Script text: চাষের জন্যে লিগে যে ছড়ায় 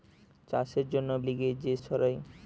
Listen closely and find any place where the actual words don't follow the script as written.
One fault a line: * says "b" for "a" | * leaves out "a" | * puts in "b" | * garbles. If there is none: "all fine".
all fine